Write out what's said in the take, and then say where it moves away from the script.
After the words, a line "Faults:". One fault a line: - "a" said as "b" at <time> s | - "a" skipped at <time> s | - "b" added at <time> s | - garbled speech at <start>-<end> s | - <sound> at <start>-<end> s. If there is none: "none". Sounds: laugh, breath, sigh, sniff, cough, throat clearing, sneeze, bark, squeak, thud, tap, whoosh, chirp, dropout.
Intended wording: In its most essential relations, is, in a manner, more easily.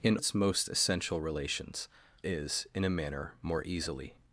In its most essential relations, is, in a manner, more easily.
Faults:
none